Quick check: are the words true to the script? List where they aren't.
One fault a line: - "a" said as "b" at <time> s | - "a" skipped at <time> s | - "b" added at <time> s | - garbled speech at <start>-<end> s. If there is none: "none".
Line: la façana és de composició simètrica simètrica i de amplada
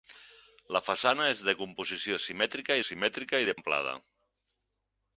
none